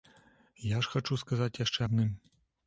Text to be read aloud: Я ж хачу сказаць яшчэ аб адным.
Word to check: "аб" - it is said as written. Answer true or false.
false